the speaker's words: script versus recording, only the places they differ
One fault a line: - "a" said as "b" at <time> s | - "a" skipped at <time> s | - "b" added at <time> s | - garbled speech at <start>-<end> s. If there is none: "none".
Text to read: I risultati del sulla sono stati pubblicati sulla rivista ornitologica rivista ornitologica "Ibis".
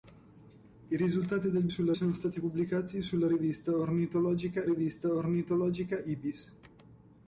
none